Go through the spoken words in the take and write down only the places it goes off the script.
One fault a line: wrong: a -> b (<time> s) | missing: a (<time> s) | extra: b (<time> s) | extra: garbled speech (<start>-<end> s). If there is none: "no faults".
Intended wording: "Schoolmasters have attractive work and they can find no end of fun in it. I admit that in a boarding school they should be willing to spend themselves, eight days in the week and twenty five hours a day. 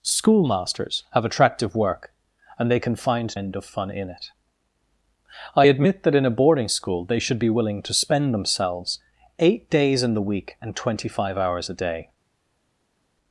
missing: no (3.4 s)